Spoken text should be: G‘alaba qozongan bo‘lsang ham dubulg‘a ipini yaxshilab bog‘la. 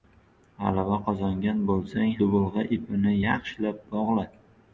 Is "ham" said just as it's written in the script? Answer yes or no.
no